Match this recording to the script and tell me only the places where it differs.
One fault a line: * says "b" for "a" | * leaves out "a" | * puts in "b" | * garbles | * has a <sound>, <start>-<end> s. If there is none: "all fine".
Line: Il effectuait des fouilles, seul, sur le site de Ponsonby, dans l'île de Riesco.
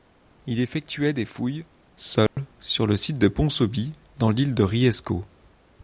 * has a dropout, 2.3-2.4 s